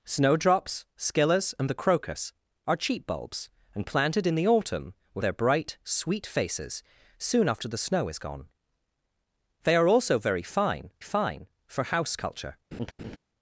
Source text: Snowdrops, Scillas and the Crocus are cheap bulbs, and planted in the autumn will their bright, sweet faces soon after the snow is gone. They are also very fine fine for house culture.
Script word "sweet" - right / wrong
right